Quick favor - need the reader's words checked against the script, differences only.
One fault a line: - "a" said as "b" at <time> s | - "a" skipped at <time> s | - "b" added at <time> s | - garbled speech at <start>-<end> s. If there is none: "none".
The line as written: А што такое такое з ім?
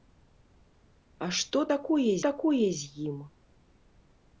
none